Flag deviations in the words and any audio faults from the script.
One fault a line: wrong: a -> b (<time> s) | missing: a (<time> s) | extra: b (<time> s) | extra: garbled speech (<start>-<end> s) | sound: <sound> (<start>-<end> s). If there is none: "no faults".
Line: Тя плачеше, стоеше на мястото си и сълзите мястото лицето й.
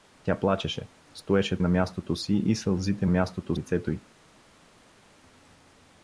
no faults